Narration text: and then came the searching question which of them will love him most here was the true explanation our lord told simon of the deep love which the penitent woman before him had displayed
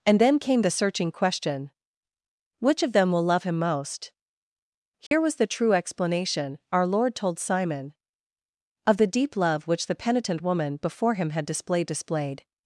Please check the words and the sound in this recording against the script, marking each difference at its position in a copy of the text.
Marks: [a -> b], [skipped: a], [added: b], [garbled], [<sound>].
and then came the searching question which of them will love him most here [dropout] was the true explanation our lord told simon of the deep love which the penitent woman before him had displayed [added: displayed]